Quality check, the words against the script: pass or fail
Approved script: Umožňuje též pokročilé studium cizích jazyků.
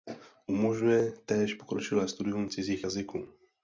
pass